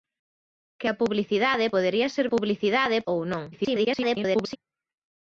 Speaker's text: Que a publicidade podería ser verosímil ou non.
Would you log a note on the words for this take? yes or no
yes